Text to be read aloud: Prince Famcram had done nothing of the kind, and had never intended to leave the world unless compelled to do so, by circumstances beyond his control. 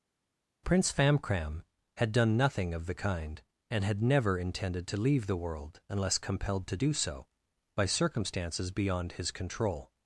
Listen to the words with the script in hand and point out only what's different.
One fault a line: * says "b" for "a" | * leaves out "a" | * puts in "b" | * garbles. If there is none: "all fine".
all fine